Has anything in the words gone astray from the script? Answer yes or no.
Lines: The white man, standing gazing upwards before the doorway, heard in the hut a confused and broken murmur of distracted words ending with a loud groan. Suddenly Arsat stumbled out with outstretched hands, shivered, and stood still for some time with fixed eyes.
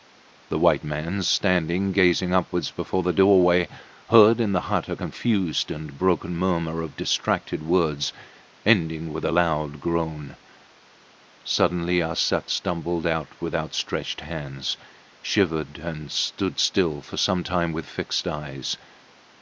no